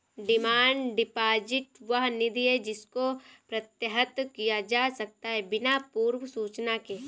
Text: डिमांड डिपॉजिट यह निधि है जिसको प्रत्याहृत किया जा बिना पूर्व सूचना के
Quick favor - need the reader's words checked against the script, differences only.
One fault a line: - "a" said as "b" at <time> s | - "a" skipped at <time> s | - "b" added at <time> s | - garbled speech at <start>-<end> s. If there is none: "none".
- "यह" said as "वह" at 1.8 s
- "सकता है" added at 5.0 s